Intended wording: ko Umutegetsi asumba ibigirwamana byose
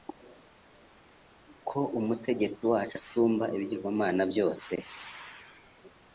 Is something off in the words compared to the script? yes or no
yes